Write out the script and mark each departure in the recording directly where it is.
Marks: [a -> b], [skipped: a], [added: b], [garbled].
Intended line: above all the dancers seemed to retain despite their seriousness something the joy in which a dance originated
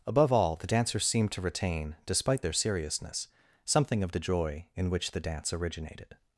above all the dancers seemed to retain despite their seriousness something [added: of] the joy in which [a -> the] dance originated